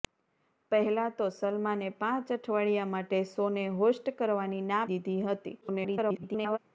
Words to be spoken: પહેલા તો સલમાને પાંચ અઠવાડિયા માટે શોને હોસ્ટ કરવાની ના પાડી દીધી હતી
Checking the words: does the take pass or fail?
fail